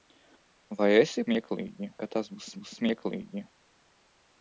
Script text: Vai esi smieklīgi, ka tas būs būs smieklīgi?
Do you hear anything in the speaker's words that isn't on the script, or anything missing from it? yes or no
no